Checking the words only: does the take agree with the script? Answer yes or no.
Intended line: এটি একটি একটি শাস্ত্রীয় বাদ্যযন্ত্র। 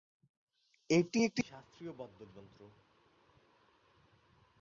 no